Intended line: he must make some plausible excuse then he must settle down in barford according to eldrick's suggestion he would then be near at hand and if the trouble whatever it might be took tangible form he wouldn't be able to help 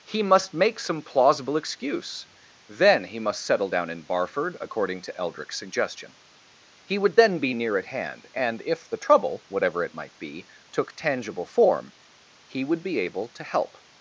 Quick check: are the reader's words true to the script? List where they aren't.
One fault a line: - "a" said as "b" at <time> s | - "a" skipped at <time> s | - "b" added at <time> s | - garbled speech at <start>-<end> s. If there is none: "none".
- "wouldn't" said as "would" at 12.6 s